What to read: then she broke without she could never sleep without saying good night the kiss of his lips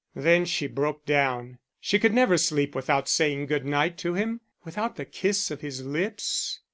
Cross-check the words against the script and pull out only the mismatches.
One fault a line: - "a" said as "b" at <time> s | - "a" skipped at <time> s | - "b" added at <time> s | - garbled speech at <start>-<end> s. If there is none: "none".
- "without" said as "down" at 1.1 s
- "to him without" added at 4.0 s